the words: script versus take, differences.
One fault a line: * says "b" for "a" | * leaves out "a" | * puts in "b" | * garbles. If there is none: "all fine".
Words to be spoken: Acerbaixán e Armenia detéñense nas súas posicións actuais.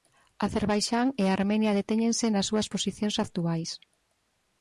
all fine